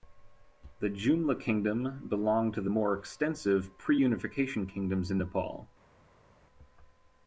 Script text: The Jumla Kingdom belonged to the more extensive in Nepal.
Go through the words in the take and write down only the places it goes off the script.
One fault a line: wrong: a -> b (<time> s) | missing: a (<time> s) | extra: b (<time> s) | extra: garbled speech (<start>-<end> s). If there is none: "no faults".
extra: pre unification kingdoms (3.8 s)